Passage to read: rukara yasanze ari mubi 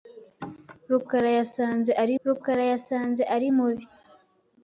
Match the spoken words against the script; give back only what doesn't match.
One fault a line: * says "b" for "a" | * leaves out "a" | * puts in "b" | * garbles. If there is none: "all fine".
* puts in "rukara yasanze ari"